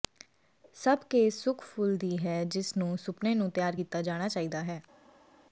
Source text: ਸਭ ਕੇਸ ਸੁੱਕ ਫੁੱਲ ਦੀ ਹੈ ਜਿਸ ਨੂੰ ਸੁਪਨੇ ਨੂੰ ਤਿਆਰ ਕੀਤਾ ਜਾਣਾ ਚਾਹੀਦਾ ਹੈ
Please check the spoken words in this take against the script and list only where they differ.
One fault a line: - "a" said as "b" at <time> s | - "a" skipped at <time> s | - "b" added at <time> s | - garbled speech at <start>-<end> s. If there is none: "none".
none